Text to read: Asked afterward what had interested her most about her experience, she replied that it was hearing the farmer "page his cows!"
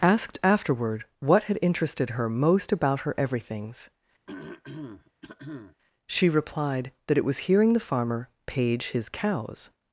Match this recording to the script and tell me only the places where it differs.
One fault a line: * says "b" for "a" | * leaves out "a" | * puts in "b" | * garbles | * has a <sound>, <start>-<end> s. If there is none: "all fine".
* says "everythings" for "experience"
* has a throat clearing, 4.3-5.8 s